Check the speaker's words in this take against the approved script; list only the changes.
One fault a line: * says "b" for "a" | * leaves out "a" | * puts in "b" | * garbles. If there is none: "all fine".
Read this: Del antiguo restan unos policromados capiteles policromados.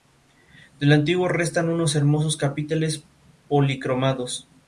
* says "hermosos" for "policromados"